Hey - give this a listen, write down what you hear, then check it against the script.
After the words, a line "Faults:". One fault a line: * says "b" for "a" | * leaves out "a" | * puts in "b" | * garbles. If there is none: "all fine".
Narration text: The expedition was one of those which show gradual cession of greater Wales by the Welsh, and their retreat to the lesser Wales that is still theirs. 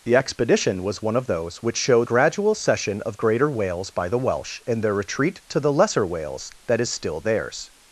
The expedition was one of those which show gradual cession of greater Wales by the Welsh, and their retreat to the lesser Wales that is still theirs.
Faults:
all fine